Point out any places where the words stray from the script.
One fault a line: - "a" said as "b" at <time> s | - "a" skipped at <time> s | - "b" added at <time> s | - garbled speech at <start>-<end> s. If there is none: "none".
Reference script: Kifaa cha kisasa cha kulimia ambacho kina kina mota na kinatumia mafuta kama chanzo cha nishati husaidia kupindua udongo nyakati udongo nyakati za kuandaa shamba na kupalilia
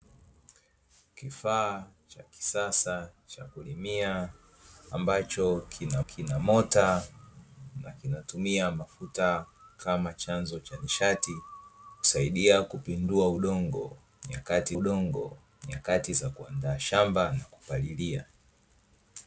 none